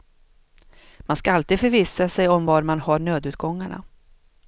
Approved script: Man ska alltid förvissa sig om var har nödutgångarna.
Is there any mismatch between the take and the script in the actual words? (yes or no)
yes